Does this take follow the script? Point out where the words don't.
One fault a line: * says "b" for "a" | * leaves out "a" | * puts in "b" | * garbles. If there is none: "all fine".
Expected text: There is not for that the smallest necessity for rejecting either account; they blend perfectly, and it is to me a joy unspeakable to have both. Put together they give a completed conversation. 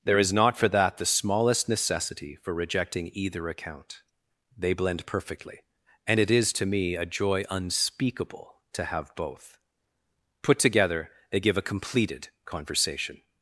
all fine